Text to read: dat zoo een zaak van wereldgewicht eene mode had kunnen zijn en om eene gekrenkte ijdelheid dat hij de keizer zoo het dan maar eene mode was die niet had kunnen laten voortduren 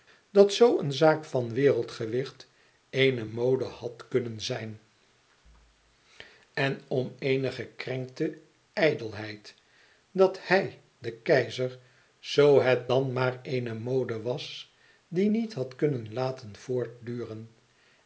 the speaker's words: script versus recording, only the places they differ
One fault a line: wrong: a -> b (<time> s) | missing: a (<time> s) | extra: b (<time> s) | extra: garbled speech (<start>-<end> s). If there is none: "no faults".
no faults